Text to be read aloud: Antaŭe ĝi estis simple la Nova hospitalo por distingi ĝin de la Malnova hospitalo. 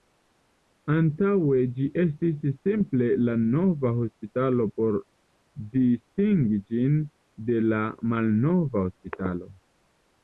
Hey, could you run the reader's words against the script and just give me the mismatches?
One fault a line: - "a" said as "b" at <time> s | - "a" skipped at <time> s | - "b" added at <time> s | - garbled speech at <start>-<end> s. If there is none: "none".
none